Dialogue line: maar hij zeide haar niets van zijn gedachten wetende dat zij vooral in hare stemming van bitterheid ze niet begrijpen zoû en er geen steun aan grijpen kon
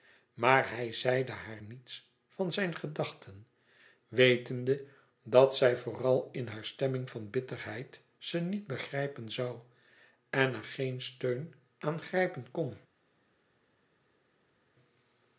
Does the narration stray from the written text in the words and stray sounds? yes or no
no